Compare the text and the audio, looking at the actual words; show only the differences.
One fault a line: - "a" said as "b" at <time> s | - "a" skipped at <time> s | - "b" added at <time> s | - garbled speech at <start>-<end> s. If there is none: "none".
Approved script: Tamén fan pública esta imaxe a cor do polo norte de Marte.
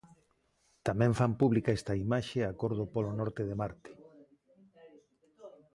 none